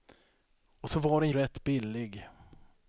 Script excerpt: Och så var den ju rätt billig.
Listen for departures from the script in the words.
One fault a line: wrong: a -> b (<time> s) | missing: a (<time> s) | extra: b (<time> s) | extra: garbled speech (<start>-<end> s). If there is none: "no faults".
missing: ju (1.3 s)